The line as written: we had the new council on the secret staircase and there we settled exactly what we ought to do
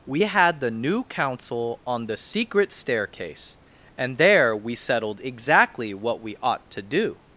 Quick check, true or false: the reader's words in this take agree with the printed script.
true